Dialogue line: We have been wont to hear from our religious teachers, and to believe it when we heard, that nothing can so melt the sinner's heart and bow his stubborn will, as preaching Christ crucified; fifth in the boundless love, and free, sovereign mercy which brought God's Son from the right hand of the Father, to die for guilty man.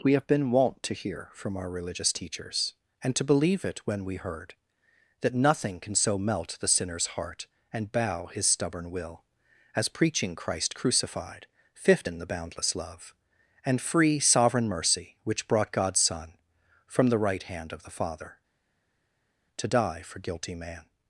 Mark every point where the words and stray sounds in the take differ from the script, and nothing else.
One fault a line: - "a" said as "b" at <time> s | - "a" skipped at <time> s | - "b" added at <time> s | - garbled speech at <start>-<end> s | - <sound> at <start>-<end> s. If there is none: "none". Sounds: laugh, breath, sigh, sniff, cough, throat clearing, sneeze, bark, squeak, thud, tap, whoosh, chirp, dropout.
none